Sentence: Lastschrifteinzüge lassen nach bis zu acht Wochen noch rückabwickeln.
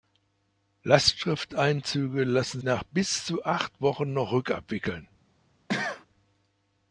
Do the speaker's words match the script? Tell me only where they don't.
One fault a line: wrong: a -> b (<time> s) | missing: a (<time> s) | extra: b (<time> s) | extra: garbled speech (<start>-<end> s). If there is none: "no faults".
no faults